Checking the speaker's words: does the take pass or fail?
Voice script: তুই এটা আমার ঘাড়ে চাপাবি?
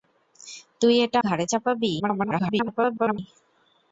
fail